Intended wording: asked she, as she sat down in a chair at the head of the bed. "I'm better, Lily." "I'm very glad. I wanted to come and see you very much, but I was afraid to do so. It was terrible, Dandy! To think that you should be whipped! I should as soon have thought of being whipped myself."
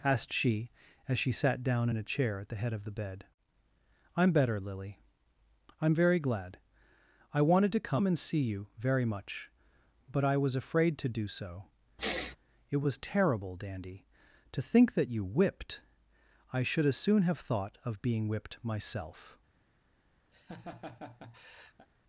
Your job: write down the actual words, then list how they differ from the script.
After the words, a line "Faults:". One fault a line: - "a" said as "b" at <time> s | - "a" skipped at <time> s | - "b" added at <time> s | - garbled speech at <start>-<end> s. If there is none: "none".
asked she, as she sat down in a chair at the head of the bed. "I'm better, Lily." "I'm very glad. I wanted to come and see you very much, but I was afraid to do so. It was terrible, Dandy! To think that you whipped! I should as soon have thought of being whipped myself."
Faults:
- "should be" skipped at 15.2 s